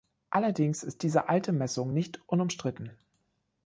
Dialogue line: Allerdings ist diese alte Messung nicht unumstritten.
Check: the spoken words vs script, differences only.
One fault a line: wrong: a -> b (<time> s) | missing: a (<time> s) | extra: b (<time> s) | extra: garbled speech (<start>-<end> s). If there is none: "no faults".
no faults